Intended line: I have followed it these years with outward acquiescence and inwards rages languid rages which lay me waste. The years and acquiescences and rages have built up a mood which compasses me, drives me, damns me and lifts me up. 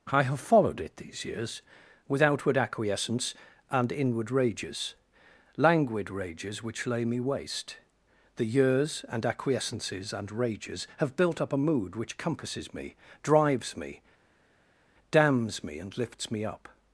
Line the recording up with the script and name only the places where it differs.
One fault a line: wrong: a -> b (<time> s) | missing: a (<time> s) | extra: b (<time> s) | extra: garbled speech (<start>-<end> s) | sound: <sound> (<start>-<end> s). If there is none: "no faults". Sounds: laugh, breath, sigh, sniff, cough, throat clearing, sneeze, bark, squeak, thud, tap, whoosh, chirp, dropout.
wrong: inwards -> inward (3.9 s)